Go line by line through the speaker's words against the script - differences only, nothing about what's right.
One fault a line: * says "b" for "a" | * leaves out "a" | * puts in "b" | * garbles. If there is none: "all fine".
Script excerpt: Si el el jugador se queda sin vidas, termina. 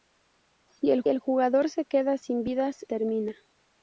all fine